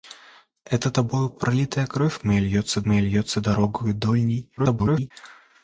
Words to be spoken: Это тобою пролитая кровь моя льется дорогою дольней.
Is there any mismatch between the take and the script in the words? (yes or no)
yes